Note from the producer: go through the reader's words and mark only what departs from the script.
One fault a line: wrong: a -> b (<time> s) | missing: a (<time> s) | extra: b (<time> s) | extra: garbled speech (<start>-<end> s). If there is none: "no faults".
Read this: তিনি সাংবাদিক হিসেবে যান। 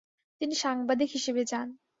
no faults